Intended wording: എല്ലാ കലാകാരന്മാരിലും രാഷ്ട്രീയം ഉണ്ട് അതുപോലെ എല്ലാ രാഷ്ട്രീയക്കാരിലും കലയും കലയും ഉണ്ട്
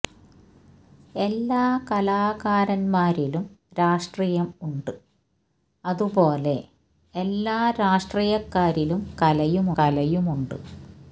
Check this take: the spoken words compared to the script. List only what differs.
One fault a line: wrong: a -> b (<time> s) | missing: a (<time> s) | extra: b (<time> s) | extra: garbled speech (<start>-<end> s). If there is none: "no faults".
no faults